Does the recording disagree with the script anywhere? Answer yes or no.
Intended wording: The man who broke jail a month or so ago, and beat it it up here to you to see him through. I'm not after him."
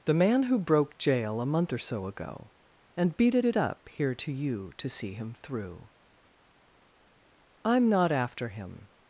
no